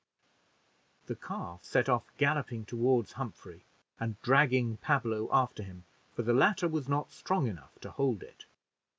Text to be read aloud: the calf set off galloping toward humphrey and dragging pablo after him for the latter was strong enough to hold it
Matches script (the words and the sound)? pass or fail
fail